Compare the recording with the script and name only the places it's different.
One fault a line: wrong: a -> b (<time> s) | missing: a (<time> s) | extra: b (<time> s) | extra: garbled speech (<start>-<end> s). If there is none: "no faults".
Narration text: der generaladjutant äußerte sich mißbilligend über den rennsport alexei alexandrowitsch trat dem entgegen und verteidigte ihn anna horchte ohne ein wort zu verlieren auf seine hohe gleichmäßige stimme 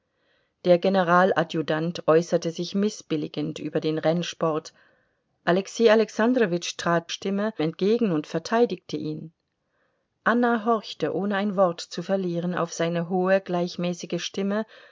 wrong: dem -> stimme (7.1 s)